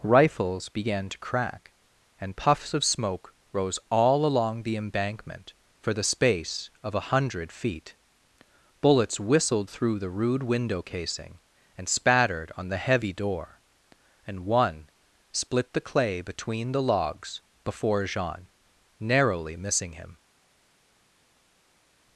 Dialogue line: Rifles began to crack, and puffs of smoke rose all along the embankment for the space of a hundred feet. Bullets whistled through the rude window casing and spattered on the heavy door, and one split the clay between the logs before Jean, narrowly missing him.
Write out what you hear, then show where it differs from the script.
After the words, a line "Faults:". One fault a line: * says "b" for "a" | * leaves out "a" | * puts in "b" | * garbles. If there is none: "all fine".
Rifles began to crack, and puffs of smoke rose all along the embankment for the space of a hundred feet. Bullets whistled through the rude window casing and spattered on the heavy door, and one split the clay between the logs before Jean, narrowly missing him.
Faults:
all fine